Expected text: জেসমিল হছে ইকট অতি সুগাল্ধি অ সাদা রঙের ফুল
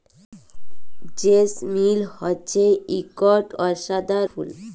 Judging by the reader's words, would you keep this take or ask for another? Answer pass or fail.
fail